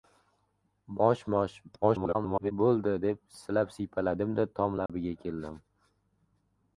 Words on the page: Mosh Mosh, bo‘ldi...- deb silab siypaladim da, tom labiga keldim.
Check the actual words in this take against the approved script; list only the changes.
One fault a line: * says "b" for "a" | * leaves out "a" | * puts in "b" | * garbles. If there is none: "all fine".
* garbles